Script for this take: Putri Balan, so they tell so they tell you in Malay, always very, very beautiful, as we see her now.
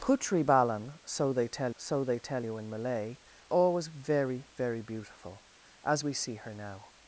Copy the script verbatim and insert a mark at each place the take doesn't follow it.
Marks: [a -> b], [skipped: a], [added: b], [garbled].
Putri Balan, so they tell so they tell you in Malay, always very, very beautiful, as we see her now.